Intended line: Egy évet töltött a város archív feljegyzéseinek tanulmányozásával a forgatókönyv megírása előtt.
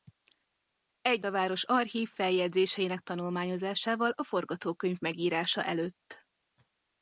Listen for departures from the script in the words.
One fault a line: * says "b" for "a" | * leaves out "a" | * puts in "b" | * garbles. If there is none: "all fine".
* leaves out "évet töltött"